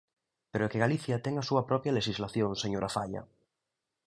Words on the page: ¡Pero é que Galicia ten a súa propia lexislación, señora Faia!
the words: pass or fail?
pass